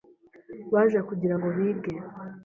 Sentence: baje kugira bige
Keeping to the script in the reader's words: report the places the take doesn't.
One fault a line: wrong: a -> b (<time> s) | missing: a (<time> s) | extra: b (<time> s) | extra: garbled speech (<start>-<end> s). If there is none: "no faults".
extra: ngo (1.3 s)